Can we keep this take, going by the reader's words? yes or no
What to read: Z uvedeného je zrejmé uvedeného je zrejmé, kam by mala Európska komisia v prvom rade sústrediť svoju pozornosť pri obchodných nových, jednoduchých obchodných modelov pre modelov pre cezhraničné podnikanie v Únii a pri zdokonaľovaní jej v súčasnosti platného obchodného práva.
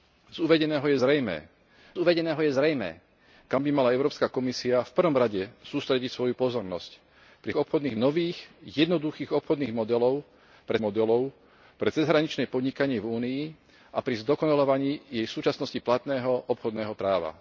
yes